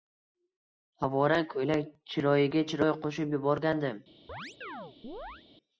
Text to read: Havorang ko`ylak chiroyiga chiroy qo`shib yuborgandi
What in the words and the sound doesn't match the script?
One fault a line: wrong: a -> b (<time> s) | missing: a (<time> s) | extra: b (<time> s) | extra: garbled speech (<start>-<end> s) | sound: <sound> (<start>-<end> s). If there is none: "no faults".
sound: chirp (4.3-5.4 s)